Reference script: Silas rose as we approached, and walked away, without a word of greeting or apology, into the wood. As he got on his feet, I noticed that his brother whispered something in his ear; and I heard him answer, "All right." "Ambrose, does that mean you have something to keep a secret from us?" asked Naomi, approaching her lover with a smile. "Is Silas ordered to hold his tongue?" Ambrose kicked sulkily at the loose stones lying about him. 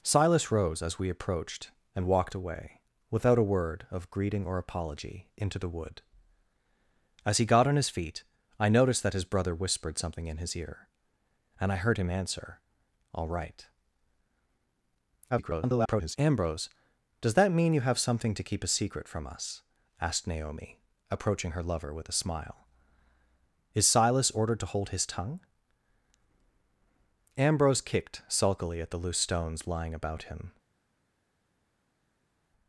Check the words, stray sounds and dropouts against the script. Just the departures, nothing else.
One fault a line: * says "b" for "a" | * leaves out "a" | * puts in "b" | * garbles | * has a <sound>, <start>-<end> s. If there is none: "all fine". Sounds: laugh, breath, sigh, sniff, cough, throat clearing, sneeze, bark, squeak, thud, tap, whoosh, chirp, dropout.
* garbles